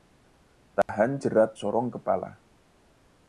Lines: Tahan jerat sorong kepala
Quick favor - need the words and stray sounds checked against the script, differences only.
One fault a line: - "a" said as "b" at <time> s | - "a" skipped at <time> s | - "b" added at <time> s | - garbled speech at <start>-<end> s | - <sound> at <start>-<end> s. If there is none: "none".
- dropout at 0.8-0.9 s